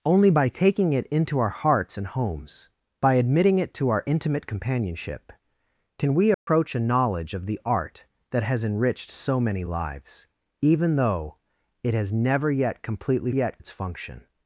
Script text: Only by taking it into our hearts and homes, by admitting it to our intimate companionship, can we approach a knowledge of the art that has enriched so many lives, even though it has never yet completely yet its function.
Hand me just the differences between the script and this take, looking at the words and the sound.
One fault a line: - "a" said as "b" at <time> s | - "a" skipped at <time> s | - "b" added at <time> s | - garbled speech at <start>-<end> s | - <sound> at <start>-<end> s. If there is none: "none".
- dropout at 6.3-6.5 s